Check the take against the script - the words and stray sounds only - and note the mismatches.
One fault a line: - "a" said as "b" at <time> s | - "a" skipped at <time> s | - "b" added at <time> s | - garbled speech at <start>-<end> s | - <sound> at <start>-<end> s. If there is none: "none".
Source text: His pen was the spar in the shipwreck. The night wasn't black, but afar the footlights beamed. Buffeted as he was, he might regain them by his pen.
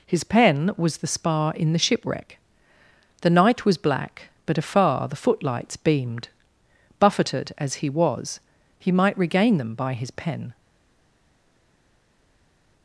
- "wasn't" said as "was" at 3.6 s